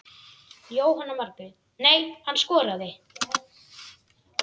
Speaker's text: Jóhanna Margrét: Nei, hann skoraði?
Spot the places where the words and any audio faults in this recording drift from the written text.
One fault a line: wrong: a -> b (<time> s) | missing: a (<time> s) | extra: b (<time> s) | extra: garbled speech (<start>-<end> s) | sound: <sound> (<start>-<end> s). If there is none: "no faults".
no faults